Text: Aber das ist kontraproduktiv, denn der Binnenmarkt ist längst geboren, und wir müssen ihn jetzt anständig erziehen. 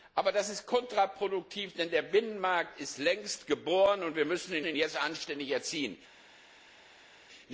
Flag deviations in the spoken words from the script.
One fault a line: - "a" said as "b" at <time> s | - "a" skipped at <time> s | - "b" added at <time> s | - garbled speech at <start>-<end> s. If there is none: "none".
- "ihn" added at 4.6 s